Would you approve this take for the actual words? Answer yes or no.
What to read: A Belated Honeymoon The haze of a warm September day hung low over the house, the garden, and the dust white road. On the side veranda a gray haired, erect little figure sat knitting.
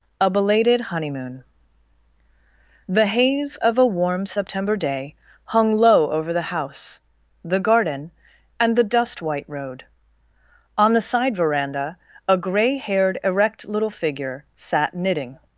yes